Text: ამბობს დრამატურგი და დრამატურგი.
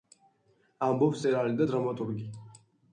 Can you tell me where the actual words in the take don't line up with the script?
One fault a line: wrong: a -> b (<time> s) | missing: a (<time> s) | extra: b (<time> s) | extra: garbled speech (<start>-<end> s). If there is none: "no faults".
wrong: დრამატურგი -> მწერალი (1.2 s)